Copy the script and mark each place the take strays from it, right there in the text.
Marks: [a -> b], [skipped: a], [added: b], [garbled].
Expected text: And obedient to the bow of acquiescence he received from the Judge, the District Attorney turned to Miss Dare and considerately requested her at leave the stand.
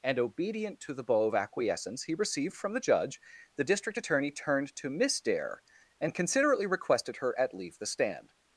And obedient to the bow of acquiescence he received from the Judge, the District Attorney turned to Miss Dare and considerately requested her at leave the stand.